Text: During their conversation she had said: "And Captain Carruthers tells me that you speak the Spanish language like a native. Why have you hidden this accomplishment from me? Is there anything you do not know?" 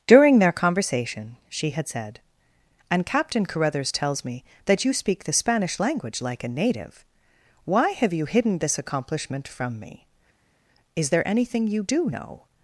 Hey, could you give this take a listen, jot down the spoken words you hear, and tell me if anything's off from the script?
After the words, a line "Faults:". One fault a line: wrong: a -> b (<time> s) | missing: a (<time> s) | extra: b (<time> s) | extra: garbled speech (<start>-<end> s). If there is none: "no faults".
During their conversation she had said: "And Captain Carruthers tells me that you speak the Spanish language like a native. Why have you hidden this accomplishment from me? Is there anything you do know?"
Faults:
missing: not (12.1 s)